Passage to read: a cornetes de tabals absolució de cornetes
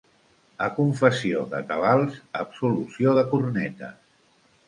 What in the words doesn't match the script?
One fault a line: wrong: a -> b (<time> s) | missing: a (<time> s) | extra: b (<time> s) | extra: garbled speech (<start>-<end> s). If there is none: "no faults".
wrong: cornetes -> confessió (0.8 s)